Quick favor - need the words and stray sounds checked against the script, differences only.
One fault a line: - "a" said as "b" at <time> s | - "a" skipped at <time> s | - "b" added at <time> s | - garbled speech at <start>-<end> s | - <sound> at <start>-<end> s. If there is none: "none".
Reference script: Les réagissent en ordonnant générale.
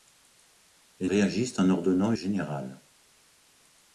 none